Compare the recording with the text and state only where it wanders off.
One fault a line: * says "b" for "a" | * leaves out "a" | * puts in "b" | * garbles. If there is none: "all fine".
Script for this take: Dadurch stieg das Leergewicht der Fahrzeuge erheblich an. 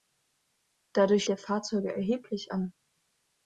* leaves out "stieg das Leergewicht"